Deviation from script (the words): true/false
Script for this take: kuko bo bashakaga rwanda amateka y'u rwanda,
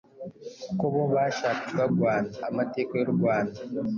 false